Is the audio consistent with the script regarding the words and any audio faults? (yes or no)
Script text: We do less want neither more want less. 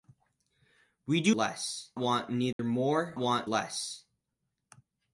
no